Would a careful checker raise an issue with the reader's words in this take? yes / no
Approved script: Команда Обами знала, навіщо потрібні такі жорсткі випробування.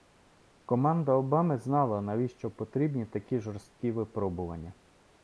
no